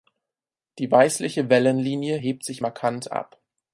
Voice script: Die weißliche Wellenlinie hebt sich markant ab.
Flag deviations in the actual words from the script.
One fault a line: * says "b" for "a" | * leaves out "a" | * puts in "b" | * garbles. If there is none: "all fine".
all fine